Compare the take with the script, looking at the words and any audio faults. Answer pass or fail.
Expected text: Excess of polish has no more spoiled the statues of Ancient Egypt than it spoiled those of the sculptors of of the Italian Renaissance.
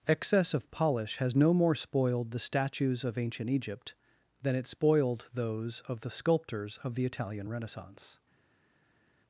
fail